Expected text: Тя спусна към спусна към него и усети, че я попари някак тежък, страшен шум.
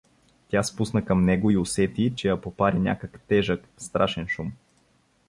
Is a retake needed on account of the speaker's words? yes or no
yes